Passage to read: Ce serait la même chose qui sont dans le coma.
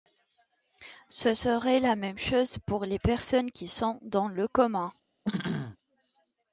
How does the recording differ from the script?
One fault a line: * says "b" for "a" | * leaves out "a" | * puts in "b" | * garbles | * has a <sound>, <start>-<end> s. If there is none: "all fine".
* puts in "pour les personnes"
* has a throat clearing, 5.2-5.8 s